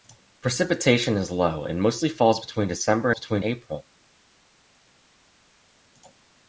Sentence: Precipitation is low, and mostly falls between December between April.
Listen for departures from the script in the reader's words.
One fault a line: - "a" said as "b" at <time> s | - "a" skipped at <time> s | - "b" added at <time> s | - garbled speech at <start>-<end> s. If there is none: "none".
none